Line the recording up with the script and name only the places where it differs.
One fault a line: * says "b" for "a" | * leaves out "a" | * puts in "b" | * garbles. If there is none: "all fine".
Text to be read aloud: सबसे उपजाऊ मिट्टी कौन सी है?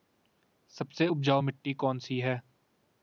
all fine